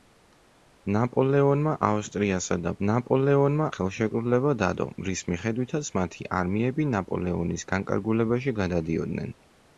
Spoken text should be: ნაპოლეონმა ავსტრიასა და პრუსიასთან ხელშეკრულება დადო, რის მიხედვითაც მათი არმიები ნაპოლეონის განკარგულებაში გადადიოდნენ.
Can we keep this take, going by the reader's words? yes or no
no